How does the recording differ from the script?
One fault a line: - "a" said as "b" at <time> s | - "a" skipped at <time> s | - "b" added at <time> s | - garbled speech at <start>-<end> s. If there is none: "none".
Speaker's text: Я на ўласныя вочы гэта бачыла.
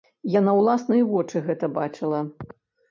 none